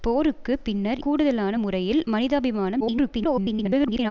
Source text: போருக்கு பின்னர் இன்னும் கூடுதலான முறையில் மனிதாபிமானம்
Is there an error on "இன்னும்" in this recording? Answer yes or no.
yes